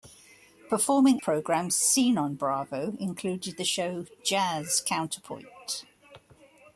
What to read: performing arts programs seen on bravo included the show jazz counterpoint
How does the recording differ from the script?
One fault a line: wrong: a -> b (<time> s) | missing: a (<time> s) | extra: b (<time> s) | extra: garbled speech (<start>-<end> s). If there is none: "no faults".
missing: arts (1.2 s)